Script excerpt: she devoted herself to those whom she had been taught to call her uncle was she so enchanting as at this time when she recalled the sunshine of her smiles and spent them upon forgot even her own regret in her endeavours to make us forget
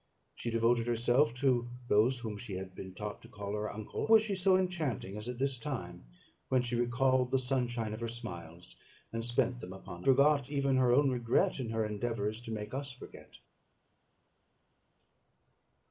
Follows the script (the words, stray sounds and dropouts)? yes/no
yes